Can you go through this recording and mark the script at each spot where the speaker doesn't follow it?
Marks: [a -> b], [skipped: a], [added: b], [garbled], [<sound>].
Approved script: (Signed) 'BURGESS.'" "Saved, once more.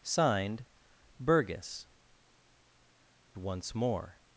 (Signed) 'BURGESS.'" [skipped: "Saved,] once more.